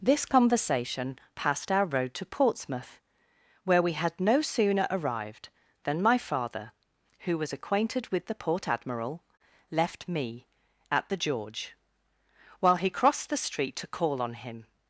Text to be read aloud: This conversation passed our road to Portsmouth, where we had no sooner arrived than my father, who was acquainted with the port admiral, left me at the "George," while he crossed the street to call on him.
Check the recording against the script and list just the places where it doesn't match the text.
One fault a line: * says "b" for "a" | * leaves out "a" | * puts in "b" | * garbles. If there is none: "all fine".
all fine